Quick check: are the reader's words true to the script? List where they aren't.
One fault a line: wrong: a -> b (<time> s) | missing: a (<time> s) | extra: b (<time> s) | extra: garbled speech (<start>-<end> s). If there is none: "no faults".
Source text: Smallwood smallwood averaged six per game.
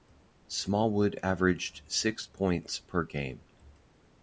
missing: smallwood (1.2 s)
extra: points (2.2 s)